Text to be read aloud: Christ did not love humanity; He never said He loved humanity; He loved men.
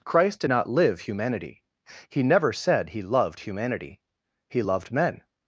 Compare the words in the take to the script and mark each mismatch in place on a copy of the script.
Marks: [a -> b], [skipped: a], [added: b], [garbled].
Christ did not [love -> live] humanity; He never said He loved humanity; He loved men.